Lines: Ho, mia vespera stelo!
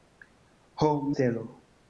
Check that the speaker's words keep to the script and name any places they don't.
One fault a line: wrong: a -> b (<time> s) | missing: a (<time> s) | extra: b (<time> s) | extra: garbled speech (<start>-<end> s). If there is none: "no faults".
missing: mia vespera (0.9 s)